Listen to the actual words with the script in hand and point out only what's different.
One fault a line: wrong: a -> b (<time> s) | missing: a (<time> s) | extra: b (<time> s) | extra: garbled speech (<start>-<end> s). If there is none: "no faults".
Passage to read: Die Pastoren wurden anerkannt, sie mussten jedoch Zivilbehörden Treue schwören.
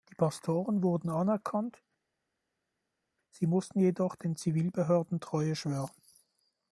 extra: den (4.1 s)